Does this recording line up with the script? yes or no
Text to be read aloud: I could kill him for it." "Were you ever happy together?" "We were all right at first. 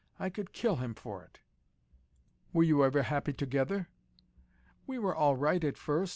yes